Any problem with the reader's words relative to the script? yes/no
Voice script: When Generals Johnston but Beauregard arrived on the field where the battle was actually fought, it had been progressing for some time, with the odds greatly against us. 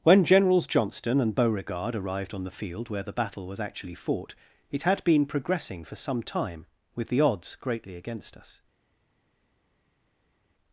yes